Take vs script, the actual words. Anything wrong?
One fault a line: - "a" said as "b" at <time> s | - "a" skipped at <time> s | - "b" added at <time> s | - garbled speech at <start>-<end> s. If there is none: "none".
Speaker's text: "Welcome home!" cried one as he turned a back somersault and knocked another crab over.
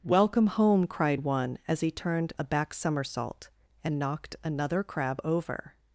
none